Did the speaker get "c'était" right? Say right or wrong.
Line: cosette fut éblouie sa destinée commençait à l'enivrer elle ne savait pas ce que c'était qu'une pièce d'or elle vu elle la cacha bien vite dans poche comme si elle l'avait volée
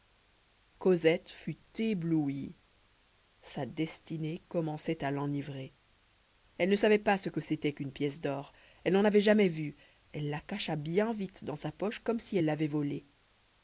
right